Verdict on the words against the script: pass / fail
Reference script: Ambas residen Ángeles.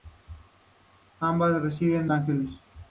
pass